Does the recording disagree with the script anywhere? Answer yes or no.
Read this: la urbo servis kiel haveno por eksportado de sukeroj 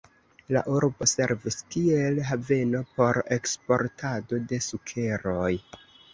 no